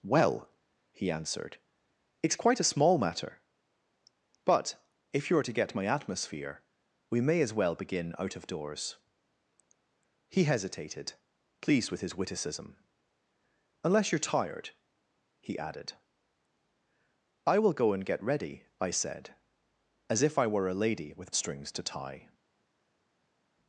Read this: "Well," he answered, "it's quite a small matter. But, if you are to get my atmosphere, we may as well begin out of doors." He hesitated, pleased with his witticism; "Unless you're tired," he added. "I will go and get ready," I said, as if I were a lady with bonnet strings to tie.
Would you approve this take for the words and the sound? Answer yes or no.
no